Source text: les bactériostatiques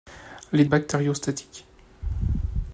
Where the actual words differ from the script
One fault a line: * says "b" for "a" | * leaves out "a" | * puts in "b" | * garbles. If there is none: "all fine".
all fine